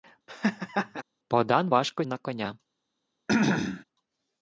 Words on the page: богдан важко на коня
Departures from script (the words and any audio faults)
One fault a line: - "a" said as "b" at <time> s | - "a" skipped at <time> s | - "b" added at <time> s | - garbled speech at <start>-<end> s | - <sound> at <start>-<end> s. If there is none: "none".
- laugh at 0.3-1.0 s
- throat clearing at 3.3-3.8 s